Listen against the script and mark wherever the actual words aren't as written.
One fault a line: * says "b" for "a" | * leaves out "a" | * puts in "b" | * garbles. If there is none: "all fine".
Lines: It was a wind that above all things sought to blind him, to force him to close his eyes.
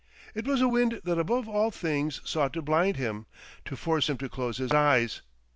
all fine